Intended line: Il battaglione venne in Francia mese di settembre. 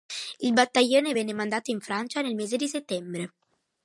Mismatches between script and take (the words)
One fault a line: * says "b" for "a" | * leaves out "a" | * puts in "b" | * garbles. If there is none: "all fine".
* puts in "mandato"
* puts in "nel"